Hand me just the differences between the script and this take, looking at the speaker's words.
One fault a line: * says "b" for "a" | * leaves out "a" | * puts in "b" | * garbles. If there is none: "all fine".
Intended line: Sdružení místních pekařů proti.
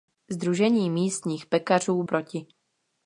all fine